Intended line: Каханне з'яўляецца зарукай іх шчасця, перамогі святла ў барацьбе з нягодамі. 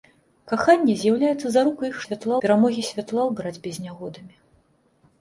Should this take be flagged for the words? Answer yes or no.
yes